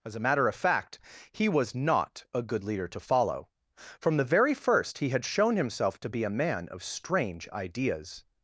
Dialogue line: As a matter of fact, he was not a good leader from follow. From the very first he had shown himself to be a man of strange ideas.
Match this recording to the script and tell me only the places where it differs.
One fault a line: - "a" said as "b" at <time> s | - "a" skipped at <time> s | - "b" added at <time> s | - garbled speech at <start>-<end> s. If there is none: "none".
- "from" said as "to" at 2.9 s